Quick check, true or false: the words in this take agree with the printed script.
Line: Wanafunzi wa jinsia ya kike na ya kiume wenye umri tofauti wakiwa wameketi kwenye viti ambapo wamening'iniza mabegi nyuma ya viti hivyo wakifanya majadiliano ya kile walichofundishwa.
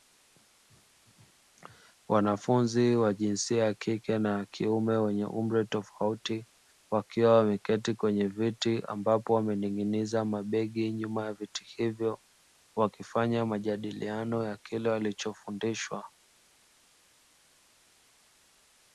true